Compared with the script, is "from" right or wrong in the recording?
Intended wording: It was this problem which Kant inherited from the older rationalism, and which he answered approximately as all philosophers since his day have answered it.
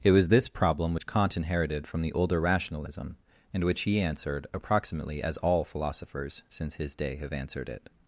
right